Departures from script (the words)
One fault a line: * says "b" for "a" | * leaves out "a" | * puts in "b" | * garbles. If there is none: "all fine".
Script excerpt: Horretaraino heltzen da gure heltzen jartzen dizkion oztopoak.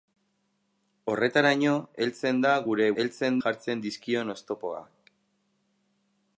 all fine